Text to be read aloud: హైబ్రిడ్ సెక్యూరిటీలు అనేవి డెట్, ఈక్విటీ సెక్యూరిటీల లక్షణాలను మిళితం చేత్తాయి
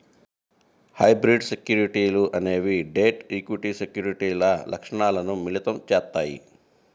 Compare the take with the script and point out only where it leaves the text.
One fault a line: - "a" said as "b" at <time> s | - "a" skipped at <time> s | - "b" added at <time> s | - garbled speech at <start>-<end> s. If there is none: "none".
none